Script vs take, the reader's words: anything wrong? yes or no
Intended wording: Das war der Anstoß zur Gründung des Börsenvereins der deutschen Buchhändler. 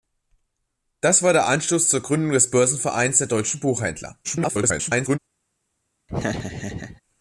yes